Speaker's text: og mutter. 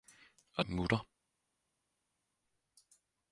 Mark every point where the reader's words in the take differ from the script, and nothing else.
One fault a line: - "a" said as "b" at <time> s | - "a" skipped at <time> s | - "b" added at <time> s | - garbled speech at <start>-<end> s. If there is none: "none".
none